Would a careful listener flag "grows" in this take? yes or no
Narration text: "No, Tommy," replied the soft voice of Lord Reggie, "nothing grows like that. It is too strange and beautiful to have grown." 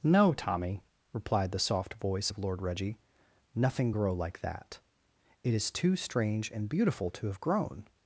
yes